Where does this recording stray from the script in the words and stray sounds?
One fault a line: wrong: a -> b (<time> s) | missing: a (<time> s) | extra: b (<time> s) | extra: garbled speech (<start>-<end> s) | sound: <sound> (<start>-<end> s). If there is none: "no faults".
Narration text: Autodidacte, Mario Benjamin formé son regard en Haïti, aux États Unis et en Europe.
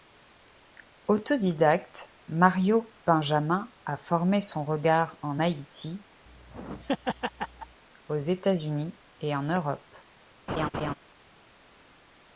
extra: a (3.8 s)
sound: laugh (6.3-7.8 s)
sound: laugh (10.5-10.9 s)